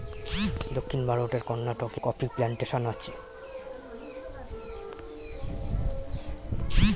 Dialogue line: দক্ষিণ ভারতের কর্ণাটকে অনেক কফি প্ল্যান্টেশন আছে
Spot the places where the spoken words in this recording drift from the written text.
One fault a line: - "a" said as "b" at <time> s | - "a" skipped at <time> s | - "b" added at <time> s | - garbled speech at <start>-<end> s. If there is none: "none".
- "অনেক" skipped at 2.0 s